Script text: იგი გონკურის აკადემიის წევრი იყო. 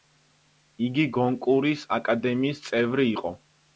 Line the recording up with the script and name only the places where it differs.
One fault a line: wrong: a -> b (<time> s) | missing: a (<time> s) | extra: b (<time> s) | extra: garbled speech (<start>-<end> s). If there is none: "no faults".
no faults